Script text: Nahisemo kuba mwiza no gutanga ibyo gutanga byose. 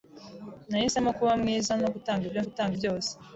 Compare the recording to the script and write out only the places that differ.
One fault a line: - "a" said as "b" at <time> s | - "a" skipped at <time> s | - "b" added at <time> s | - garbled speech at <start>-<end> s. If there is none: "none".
none